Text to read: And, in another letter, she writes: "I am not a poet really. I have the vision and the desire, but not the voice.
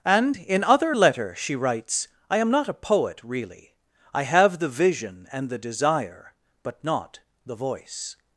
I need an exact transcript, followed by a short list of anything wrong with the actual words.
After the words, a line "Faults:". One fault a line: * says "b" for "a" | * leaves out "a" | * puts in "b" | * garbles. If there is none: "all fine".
And, in other letter, she writes: "I am not a poet really. I have the vision and the desire, but not the voice.
Faults:
* says "other" for "another"